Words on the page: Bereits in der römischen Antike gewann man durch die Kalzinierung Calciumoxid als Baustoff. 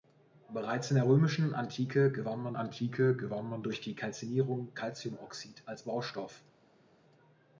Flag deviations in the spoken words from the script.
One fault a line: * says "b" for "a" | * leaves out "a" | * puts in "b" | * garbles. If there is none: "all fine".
* puts in "Antike gewann man"